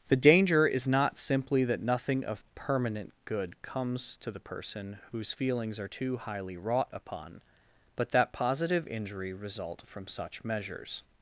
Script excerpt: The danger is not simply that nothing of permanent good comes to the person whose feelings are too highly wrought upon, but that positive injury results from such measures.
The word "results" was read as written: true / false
false